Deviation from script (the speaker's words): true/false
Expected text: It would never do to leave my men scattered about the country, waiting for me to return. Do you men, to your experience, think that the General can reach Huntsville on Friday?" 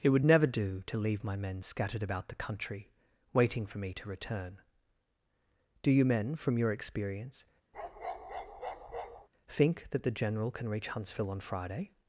true